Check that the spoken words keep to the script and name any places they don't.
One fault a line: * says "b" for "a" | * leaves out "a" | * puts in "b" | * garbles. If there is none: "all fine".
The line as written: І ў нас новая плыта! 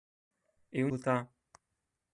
* leaves out "нас новая"